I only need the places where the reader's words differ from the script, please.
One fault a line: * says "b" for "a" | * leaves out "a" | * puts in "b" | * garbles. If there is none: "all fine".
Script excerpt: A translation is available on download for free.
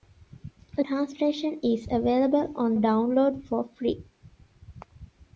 all fine